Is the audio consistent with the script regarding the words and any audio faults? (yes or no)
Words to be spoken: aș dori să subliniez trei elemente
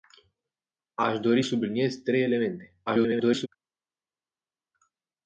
no